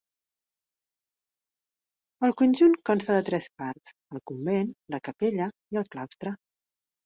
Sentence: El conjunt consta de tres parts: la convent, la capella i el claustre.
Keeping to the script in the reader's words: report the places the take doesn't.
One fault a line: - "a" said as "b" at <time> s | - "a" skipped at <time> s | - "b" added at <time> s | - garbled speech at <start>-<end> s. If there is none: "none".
- "la" said as "el" at 4.2 s